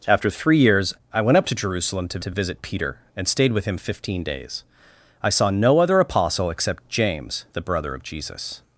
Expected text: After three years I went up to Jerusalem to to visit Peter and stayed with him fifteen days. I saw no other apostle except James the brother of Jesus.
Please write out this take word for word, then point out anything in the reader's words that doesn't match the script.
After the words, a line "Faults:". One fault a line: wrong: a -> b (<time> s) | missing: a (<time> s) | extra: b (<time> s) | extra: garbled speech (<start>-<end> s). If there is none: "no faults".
After three years I went up to Jerusalem to to visit Peter and stayed with him fifteen days. I saw no other apostle except James the brother of Jesus.
Faults:
no faults